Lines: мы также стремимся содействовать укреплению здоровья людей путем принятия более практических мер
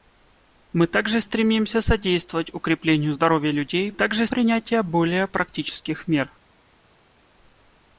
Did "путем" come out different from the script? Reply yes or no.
yes